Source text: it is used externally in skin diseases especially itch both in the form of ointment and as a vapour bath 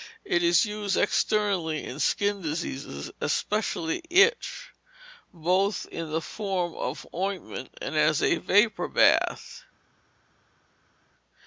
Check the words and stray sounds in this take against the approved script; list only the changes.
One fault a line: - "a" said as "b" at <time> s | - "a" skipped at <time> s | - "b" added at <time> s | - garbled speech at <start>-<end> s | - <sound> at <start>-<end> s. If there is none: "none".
none